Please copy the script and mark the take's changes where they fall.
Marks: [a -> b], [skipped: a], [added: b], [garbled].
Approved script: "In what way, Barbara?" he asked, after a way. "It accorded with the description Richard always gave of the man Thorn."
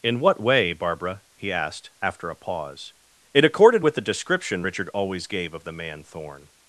"In what way, Barbara?" he asked, after a [way. -> pause] "It accorded with the description Richard always gave of the man Thorn."